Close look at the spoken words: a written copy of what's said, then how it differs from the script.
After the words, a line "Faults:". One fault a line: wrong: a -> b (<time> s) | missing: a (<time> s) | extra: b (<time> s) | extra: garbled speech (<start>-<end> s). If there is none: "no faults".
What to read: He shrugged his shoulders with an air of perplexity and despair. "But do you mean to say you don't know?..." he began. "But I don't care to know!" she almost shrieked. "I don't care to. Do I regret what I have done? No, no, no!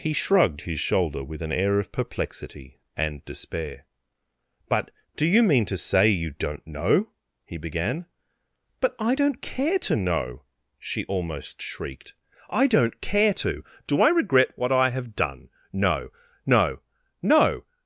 He shrugged his shoulder with an air of perplexity and despair. "But do you mean to say you don't know?..." he began. "But I don't care to know!" she almost shrieked. "I don't care to. Do I regret what I have done? No, no, no!
Faults:
wrong: shoulders -> shoulder (0.8 s)